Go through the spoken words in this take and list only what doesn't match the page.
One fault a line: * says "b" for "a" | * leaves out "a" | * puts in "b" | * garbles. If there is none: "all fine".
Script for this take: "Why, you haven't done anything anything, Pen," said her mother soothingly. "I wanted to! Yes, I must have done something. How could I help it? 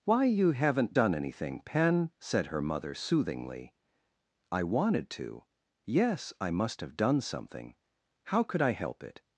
* leaves out "anything"